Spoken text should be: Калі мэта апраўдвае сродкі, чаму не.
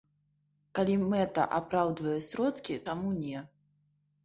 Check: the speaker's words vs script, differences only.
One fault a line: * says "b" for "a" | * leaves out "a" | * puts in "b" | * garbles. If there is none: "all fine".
all fine